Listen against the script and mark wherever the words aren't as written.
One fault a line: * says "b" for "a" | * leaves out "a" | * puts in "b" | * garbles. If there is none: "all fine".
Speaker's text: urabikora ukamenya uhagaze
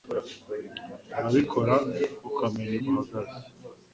all fine